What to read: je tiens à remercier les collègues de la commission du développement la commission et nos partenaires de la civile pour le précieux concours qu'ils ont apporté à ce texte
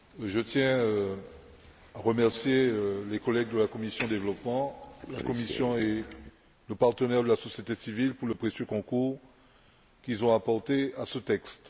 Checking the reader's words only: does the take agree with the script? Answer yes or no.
no